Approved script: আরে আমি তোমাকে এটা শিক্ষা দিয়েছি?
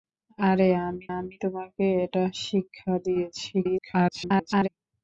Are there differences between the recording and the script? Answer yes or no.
yes